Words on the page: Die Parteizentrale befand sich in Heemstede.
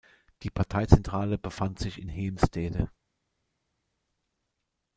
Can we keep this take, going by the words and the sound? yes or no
yes